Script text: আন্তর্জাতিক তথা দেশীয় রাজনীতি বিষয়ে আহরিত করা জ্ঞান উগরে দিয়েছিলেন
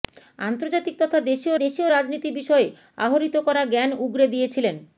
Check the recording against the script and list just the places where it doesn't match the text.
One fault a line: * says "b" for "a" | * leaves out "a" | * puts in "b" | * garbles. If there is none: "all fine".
* puts in "দেশীয়"